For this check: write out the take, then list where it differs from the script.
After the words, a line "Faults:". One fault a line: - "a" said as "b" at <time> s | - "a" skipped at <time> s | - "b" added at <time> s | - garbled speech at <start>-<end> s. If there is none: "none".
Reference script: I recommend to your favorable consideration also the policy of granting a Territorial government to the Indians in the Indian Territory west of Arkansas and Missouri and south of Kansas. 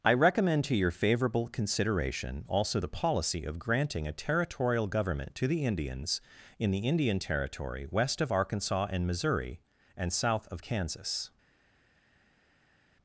I recommend to your favorable consideration also the policy of granting a Territorial government to the Indians in the Indian Territory west of Arkansas and Missouri and south of Kansas.
Faults:
none